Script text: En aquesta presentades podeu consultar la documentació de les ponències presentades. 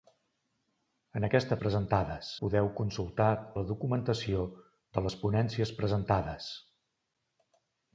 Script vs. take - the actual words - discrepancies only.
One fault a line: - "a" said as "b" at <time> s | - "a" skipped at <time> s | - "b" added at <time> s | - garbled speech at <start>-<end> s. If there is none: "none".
none